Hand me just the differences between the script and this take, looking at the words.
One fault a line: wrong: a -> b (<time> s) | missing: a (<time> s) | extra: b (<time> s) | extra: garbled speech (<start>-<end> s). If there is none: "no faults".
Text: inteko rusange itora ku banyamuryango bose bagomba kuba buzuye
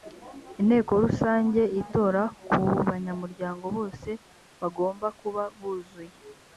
no faults